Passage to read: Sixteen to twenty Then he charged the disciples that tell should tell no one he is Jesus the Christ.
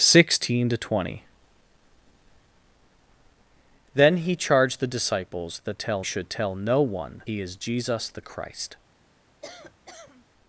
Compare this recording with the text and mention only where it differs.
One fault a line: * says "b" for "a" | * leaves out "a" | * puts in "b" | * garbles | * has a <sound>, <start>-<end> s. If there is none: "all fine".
* has a cough, 9.4-10.3 s